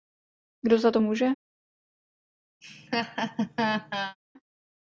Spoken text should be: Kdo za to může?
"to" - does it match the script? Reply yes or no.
yes